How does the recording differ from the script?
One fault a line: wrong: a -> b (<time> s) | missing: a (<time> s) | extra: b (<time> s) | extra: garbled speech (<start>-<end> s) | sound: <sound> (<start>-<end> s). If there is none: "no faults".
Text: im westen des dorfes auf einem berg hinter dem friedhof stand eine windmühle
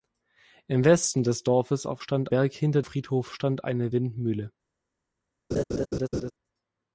wrong: einem -> stand (2.0 s)
missing: dem (2.8 s)
sound: laugh (5.5-6.3 s)